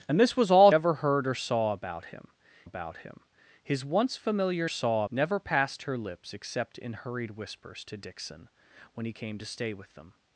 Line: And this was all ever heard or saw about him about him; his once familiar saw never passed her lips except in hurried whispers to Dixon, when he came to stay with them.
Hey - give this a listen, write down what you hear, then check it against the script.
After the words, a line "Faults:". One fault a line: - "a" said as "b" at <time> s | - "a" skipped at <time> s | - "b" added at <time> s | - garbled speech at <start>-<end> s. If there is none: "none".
And this was all ever heard or saw about him about him; his once familiar saw never passed her lips except in hurried whispers to Dixon, when he came to stay with them.
Faults:
none